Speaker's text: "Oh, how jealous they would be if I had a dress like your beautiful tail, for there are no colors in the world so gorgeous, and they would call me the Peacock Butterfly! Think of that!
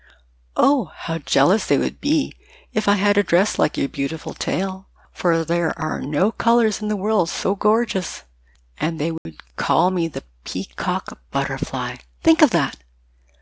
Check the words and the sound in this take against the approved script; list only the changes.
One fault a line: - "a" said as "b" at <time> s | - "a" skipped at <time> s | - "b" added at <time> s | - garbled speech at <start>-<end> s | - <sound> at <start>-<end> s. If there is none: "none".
- dropout at 9.2-9.3 s